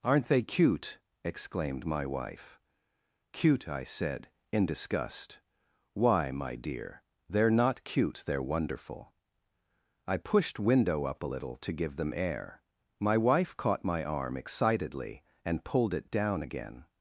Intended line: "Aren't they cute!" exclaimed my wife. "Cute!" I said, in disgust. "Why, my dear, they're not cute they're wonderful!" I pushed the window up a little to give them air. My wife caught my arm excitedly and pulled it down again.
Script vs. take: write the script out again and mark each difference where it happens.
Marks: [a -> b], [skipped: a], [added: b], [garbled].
"Aren't they cute!" exclaimed my wife. "Cute!" I said, in disgust. "Why, my dear, they're not cute they're wonderful!" I pushed [skipped: the] window up a little to give them air. My wife caught my arm excitedly and pulled it down again.